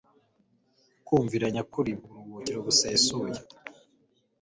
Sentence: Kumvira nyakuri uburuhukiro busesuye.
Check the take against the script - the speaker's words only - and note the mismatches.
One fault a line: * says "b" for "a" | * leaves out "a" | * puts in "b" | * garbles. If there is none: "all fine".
all fine